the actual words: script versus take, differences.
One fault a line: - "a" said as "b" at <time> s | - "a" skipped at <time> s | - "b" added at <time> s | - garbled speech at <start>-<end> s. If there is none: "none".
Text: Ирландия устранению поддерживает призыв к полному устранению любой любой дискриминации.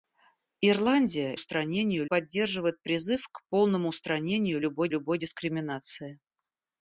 none